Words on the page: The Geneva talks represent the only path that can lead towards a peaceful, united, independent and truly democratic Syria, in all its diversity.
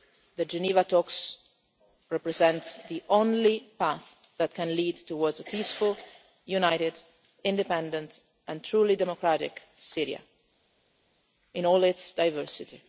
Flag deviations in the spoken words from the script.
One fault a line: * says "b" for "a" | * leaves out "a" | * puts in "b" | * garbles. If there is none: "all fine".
all fine